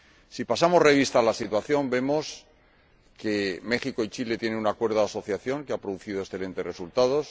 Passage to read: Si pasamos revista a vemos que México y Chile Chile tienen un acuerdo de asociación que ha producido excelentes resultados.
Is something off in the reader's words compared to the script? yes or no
yes